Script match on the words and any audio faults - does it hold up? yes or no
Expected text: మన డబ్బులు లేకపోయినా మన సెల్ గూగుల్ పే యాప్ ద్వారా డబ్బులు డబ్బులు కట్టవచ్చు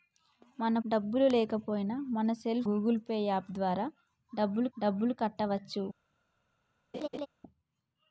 no